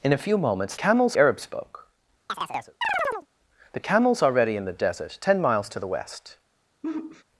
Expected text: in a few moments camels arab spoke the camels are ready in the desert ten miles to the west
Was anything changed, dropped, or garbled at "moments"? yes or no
no